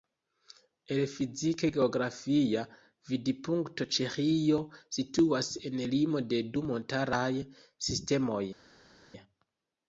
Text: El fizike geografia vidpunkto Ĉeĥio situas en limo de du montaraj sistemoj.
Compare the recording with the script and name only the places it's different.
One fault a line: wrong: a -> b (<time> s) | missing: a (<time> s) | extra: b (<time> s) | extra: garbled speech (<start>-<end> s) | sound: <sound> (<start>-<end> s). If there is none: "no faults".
no faults